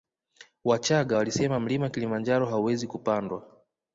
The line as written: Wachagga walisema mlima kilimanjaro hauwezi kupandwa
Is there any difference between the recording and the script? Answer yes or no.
no